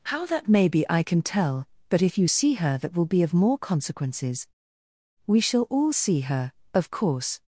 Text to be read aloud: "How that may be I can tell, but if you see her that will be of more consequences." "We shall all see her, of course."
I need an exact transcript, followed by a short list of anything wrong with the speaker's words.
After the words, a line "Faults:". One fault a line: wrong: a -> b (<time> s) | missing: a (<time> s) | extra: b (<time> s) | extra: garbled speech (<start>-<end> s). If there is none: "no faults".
"How that may be I can tell, but if you see her that will be of more consequences." "We shall all see her, of course."
Faults:
no faults